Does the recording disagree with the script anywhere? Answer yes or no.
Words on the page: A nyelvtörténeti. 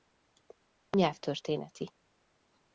no